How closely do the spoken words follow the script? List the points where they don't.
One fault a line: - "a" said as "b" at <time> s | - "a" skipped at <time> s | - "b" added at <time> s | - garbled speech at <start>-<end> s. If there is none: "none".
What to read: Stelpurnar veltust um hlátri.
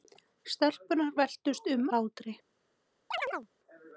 none